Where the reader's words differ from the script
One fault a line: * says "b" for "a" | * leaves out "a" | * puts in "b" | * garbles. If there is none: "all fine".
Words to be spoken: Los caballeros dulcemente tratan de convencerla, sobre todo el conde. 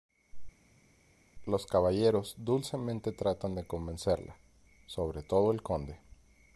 all fine